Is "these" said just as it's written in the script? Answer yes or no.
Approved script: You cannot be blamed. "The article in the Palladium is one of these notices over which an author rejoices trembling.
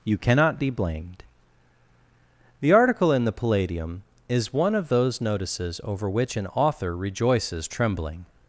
no